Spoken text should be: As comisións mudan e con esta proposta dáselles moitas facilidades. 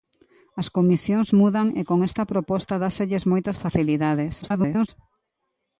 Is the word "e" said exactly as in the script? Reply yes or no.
yes